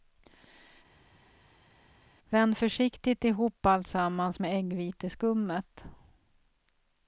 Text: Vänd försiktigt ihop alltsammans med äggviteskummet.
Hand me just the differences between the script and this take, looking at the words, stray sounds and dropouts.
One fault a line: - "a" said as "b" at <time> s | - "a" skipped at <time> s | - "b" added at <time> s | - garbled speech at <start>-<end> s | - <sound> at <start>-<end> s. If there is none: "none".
none